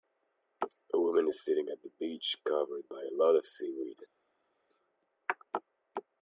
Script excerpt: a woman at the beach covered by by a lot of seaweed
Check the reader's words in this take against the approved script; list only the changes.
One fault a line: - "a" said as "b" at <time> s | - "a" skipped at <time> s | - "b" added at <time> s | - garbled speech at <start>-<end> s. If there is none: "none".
- "is sitting" added at 1.3 s
- "by" skipped at 3.0 s